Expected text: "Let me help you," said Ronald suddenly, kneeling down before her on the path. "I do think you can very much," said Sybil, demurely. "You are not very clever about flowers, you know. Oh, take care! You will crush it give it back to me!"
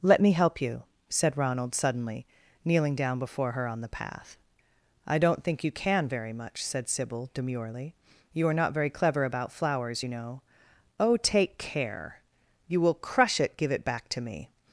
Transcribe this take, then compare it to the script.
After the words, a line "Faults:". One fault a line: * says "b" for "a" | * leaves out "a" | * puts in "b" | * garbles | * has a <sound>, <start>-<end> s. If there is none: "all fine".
"Let me help you," said Ronald suddenly, kneeling down before her on the path. "I don't think you can very much," said Sybil, demurely. "You are not very clever about flowers, you know. Oh, take care! You will crush it give it back to me!"
Faults:
* says "don't" for "do"